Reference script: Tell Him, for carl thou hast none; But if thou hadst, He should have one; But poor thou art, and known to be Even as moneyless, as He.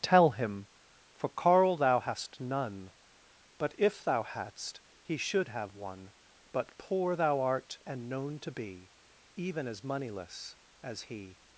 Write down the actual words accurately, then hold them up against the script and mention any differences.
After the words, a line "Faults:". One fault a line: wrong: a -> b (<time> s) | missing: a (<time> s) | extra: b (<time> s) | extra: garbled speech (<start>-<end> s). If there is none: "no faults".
Tell Him, for carl thou hast none; But if thou hadst, He should have one; But poor thou art, and known to be Even as moneyless, as He.
Faults:
no faults